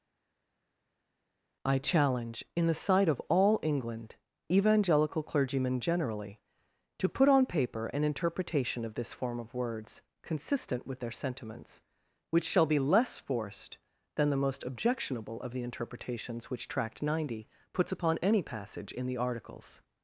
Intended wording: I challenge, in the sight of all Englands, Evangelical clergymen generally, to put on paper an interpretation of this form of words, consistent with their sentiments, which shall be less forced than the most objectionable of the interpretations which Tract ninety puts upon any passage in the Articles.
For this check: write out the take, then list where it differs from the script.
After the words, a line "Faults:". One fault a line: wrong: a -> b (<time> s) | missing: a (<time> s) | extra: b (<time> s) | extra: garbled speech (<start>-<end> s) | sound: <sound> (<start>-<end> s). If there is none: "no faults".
I challenge, in the sight of all England, Evangelical clergymen generally, to put on paper an interpretation of this form of words, consistent with their sentiments, which shall be less forced than the most objectionable of the interpretations which Tract ninety puts upon any passage in the Articles.
Faults:
wrong: Englands -> England (3.6 s)